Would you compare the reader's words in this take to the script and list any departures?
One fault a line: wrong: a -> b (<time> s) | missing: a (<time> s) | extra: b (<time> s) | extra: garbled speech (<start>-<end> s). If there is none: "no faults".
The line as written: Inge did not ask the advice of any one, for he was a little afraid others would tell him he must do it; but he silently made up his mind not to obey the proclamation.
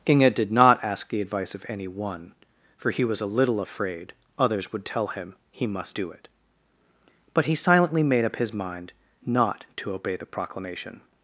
no faults